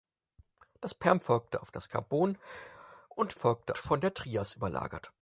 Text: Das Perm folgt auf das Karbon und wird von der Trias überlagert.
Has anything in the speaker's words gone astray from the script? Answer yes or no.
yes